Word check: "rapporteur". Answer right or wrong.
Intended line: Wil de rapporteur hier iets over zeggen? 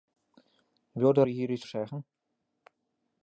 wrong